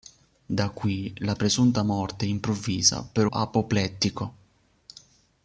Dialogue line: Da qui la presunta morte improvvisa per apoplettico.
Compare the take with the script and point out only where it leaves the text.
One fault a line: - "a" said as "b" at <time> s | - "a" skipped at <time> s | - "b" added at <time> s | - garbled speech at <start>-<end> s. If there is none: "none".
none